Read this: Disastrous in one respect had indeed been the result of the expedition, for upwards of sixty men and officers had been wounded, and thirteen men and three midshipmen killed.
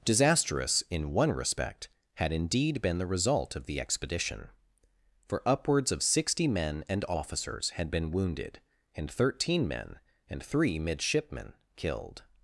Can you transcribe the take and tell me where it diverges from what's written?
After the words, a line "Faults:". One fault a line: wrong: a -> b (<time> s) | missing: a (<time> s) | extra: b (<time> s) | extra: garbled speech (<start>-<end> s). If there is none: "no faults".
Disastrous in one respect had indeed been the result of the expedition, for upwards of sixty men and officers had been wounded, and thirteen men and three midshipmen killed.
Faults:
no faults